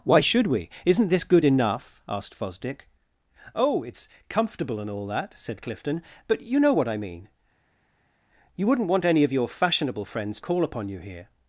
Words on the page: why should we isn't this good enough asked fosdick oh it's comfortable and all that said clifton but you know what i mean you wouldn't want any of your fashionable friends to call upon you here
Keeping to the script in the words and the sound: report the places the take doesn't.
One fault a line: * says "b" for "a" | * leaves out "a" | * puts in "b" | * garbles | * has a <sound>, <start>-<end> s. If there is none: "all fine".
* leaves out "to"